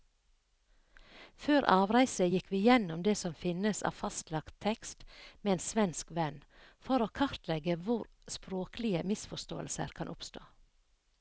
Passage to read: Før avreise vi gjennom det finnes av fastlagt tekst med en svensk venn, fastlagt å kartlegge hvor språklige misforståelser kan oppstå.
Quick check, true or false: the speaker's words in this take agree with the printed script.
false